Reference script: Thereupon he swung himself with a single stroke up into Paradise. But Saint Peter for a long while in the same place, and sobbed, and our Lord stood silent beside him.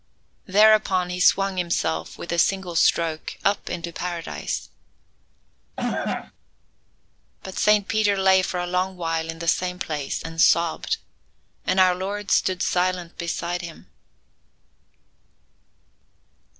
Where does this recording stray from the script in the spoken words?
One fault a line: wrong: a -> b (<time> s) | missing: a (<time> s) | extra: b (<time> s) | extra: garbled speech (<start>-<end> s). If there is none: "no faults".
extra: lay (8.2 s)